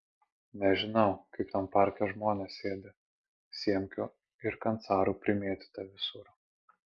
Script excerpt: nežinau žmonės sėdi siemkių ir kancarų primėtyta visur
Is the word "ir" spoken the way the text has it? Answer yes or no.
yes